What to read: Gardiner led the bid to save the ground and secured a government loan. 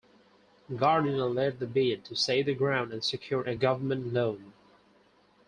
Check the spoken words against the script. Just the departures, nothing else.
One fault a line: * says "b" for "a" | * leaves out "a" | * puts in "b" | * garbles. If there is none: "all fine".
all fine